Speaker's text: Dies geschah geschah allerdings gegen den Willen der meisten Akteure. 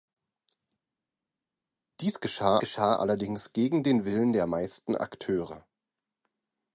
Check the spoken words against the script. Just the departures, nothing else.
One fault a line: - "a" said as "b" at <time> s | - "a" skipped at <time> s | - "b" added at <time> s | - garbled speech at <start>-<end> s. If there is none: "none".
none